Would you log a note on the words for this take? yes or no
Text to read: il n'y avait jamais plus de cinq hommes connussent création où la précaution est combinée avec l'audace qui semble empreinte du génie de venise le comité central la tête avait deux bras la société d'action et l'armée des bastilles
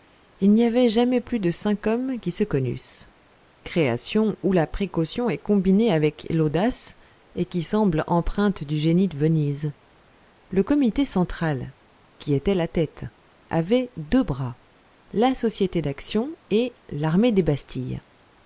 yes